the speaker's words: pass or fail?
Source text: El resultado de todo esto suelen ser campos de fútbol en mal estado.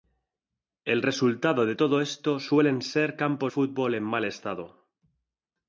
fail